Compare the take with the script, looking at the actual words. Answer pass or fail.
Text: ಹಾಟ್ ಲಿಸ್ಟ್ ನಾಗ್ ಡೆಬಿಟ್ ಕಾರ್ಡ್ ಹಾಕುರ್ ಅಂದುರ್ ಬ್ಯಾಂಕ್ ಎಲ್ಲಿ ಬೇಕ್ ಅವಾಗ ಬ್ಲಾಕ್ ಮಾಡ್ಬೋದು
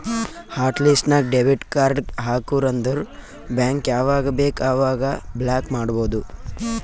fail